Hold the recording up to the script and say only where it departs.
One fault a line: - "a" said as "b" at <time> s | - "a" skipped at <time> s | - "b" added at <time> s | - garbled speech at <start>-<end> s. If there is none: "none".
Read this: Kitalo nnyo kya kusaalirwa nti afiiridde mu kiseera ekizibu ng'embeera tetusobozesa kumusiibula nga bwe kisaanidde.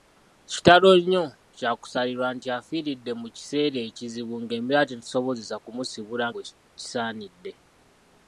- "nga" skipped at 6.2 s